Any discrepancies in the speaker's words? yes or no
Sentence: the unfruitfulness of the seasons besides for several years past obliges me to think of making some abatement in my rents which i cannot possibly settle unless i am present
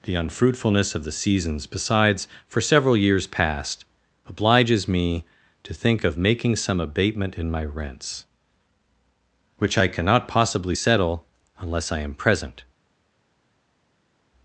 no